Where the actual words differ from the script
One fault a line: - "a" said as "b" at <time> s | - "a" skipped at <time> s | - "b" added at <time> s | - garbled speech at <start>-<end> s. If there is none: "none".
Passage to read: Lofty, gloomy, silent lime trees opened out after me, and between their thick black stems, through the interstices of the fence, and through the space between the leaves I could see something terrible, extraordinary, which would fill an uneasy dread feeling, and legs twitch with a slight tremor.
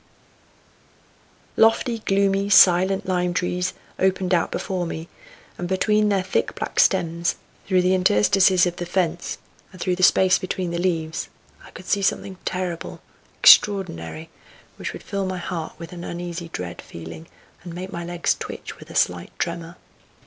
- "after" said as "before" at 4.5 s
- "my heart with" added at 15.2 s
- "make my" added at 17.7 s